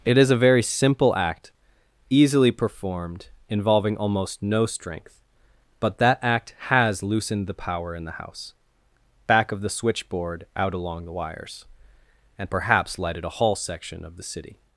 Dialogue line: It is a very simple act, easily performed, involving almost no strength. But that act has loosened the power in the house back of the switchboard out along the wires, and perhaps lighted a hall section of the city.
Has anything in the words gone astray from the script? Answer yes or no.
no